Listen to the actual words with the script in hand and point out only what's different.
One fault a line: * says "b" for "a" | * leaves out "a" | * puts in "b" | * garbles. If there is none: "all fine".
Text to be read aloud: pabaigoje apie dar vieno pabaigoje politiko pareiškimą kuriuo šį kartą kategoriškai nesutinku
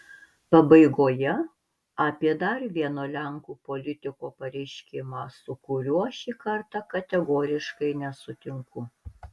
* says "lenkų" for "pabaigoje"
* puts in "su"